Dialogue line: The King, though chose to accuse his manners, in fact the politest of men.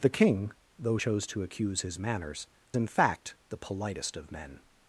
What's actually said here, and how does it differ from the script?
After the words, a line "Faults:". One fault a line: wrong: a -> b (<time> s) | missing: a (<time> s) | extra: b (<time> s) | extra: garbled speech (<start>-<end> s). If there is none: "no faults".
The King, though chose to accuse his manners, in fact the politest of men.
Faults:
no faults